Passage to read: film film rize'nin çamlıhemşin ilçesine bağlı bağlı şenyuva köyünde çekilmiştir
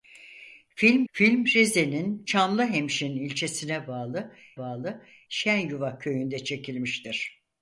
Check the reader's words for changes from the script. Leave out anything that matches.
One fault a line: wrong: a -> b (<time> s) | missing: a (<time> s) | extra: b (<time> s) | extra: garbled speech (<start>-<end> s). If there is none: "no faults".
no faults